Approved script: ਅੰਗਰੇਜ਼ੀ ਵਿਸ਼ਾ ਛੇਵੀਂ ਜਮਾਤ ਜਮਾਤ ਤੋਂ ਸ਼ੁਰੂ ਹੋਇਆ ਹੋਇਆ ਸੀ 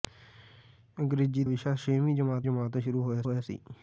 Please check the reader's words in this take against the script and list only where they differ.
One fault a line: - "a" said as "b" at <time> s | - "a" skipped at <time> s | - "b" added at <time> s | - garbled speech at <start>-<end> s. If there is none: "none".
none